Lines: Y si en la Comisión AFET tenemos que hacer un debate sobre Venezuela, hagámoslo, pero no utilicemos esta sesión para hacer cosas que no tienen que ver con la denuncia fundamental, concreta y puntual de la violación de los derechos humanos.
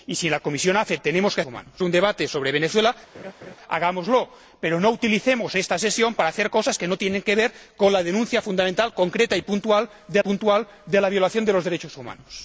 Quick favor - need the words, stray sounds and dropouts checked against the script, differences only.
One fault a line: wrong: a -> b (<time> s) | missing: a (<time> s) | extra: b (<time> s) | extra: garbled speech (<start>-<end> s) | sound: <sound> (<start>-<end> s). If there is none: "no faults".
wrong: hacer -> humanos (1.5 s)
sound: laugh (3.1-3.6 s)
extra: puntual de (10.2 s)